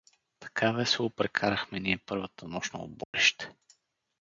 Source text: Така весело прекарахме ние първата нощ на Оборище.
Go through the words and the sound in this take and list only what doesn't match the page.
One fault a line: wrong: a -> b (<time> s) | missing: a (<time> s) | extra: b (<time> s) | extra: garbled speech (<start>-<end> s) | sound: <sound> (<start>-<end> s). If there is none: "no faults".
sound: dropout (3.0-3.1 s)